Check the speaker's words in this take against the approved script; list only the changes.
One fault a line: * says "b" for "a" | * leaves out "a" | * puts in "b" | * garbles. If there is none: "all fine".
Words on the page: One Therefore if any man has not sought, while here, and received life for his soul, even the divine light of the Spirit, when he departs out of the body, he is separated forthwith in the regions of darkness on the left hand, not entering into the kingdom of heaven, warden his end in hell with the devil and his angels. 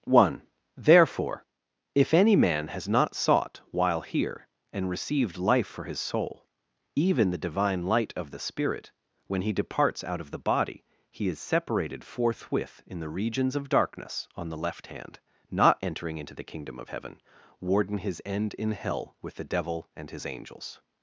all fine